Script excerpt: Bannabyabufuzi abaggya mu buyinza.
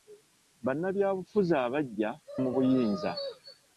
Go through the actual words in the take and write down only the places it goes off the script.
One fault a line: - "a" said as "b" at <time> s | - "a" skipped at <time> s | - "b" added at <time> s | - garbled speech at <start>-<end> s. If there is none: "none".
none